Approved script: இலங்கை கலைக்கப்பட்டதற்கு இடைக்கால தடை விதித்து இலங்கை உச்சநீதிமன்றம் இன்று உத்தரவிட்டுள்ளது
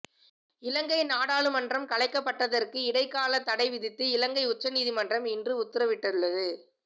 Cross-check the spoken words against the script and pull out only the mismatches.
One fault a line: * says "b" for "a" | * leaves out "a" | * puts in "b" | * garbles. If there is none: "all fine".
* puts in "நாடாளுமன்றம்"